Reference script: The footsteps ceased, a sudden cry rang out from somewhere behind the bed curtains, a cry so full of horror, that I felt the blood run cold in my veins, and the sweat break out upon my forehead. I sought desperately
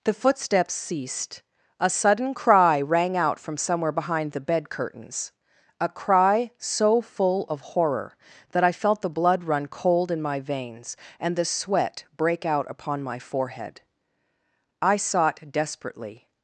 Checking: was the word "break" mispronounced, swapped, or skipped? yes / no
no